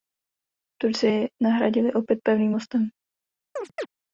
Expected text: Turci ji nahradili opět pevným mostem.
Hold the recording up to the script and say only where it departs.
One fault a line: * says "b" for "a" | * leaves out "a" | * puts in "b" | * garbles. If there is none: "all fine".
all fine